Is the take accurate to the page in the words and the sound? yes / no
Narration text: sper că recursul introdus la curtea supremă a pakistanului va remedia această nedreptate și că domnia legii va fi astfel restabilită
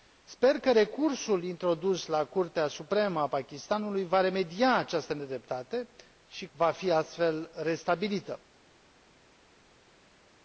no